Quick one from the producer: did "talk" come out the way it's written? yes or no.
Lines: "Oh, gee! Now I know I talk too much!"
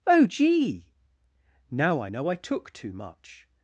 no